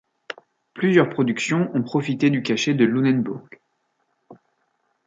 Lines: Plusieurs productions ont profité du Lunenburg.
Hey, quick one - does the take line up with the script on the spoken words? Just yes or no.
no